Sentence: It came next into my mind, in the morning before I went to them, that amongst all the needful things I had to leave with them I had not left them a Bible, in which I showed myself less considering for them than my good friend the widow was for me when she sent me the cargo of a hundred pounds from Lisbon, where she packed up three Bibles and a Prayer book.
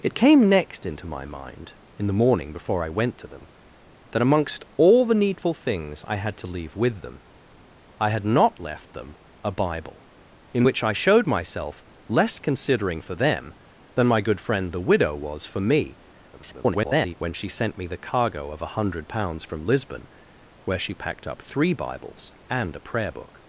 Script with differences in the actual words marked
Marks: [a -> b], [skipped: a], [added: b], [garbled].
It came next into my mind, in the morning before I went to them, that amongst all the needful things I had to leave with them I had not left them a Bible, in which I showed myself less considering for them than my good friend the widow was for me [garbled] when she sent me the cargo of a hundred pounds from Lisbon, where she packed up three Bibles and a Prayer book.